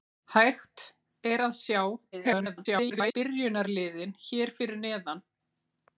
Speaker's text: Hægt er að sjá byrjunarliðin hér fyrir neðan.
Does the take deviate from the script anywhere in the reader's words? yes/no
yes